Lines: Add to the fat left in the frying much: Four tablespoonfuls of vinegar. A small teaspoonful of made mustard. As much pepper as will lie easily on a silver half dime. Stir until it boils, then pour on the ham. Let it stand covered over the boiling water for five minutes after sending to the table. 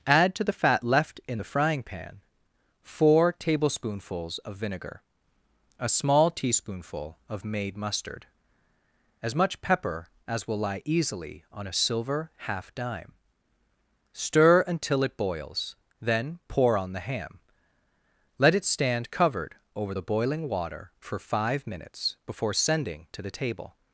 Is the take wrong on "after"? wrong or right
wrong